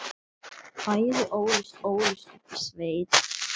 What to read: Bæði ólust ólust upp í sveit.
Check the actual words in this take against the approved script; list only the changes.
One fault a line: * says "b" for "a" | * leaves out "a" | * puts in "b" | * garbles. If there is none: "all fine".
all fine